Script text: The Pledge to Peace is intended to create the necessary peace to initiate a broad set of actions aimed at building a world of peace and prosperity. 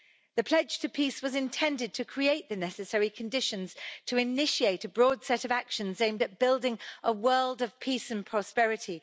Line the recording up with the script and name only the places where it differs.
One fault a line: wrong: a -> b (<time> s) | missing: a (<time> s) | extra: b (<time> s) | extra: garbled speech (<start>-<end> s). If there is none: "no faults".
wrong: is -> was (1.2 s)
wrong: peace -> conditions (3.1 s)